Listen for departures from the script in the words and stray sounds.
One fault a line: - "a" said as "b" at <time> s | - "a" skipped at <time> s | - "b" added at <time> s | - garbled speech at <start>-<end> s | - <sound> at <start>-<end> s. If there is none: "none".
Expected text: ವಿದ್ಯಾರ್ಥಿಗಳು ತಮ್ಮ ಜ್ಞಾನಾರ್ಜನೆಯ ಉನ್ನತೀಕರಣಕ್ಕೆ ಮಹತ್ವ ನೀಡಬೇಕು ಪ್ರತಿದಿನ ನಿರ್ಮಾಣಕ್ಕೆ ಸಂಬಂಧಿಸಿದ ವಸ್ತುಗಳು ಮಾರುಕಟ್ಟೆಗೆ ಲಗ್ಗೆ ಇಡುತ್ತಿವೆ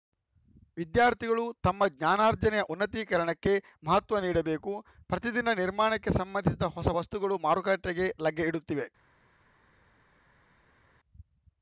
- "ಹೊಸ" added at 6.8 s